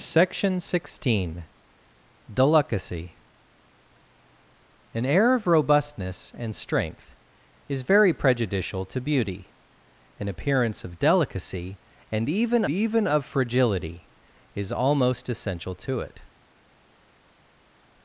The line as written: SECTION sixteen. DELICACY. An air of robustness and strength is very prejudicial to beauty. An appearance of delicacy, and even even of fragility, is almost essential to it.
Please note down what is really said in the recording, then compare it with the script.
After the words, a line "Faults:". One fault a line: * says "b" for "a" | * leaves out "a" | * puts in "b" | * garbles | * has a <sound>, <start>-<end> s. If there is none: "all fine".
SECTION sixteen. DELICACY. An air of robustness and strength is very prejudicial to beauty. An appearance of delicacy, and even even of fragility, is almost essential to it.
Faults:
all fine